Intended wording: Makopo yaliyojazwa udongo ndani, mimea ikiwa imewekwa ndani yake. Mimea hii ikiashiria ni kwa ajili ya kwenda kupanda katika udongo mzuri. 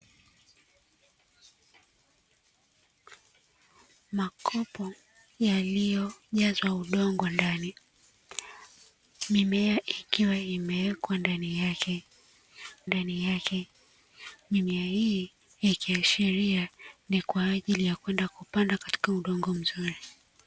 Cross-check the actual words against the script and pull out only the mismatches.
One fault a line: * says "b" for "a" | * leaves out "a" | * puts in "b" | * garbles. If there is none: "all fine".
* puts in "ndani yake"